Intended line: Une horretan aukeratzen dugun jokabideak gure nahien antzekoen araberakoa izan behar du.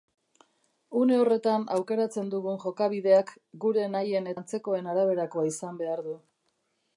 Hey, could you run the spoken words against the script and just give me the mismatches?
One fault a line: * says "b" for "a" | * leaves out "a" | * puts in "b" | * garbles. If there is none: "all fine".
all fine